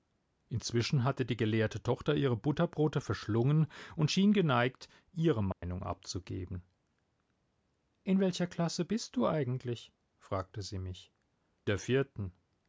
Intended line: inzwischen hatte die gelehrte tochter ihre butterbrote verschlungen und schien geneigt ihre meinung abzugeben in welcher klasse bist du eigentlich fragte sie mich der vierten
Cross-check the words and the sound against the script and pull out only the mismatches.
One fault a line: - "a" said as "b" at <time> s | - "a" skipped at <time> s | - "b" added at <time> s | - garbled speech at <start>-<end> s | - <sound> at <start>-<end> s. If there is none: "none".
- dropout at 5.5-5.6 s